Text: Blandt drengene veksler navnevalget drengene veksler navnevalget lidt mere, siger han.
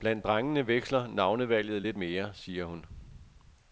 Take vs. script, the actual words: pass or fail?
fail